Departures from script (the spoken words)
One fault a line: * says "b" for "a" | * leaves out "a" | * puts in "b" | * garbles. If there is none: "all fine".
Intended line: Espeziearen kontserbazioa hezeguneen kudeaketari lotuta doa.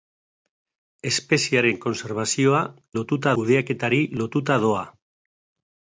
* says "lotuta" for "hezeguneen"